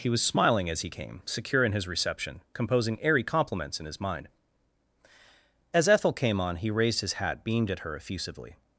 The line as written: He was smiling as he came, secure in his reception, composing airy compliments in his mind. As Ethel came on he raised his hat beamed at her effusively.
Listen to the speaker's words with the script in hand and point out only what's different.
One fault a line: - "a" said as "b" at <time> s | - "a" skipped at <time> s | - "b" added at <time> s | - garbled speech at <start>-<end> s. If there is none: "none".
none